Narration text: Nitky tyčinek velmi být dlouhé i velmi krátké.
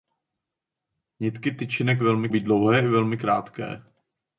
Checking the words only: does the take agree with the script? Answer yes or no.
yes